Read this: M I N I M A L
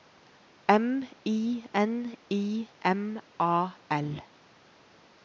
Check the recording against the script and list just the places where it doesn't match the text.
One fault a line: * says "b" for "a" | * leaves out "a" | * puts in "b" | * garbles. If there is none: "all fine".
all fine